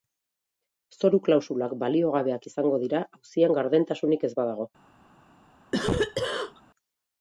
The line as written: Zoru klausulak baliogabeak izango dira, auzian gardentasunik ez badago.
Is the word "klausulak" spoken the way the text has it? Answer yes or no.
yes